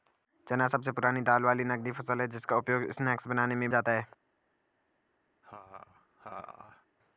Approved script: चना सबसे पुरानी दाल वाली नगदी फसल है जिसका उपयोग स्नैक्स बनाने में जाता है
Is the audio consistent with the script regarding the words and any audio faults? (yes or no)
no